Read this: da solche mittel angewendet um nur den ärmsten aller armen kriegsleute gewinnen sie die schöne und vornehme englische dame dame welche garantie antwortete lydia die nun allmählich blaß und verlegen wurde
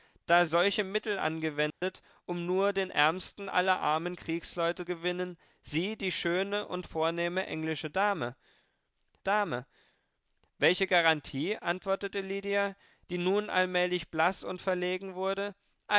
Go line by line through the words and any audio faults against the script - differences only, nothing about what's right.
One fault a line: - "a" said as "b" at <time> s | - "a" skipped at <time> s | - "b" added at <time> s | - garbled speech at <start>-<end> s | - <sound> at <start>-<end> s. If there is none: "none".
- dropout at 1.7-1.8 s